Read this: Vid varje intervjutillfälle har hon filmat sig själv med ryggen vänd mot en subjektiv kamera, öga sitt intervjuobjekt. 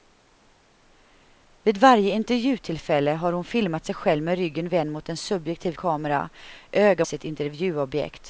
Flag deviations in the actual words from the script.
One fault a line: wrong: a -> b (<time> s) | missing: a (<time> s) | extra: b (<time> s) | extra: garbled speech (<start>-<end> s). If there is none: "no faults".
no faults